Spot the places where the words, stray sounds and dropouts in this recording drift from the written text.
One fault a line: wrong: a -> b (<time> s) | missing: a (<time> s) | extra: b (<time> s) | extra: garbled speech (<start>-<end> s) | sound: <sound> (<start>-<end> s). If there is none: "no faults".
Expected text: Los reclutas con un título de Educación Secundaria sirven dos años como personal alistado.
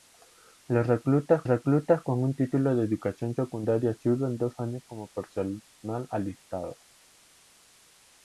extra: reclutas (1.5 s)